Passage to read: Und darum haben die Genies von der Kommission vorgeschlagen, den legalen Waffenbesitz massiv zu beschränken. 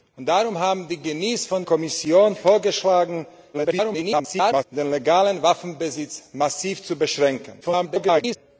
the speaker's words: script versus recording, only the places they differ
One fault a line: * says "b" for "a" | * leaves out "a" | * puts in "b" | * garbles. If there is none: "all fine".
* leaves out "der"
* garbles
* garbles